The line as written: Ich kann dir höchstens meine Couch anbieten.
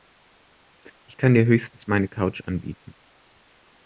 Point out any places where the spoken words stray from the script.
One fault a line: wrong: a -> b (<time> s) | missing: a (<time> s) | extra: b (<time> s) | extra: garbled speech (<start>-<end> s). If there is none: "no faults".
no faults